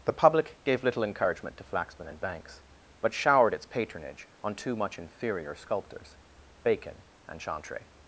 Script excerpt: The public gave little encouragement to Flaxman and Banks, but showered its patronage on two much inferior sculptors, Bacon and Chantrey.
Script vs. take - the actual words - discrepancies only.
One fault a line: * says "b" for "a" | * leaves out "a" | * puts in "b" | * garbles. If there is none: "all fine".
all fine